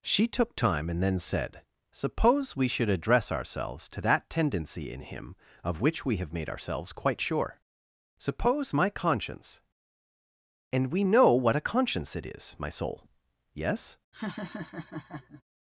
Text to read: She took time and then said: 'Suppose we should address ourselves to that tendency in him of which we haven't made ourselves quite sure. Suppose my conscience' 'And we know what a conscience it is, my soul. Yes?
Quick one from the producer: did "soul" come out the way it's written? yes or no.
yes